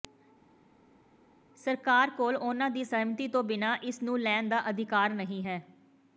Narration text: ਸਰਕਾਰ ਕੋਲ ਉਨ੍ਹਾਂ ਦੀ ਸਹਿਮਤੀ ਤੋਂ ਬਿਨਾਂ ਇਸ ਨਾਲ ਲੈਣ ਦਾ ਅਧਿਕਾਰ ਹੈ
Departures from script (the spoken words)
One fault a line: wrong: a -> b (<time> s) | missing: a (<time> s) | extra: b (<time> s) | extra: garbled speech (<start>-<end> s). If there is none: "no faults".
wrong: ਨਾਲ -> ਨੂੰ (4.0 s)
extra: ਨਹੀਂ (5.1 s)